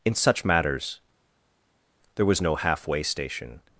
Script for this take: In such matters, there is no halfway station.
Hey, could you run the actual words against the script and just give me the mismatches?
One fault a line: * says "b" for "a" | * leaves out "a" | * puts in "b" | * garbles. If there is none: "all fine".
* says "was" for "is"